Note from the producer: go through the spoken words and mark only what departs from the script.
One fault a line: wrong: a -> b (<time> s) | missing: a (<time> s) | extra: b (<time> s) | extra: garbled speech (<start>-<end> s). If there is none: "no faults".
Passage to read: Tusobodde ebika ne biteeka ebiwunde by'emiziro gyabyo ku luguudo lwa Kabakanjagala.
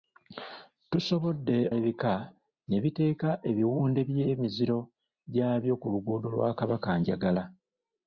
no faults